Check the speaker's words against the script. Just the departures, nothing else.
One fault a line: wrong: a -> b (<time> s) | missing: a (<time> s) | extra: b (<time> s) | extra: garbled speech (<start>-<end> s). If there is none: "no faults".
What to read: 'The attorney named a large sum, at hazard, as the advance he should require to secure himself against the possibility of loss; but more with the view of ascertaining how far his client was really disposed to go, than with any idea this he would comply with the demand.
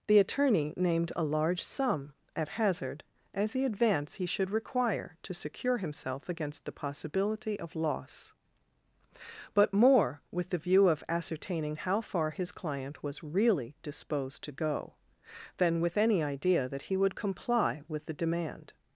wrong: this -> that (16.7 s)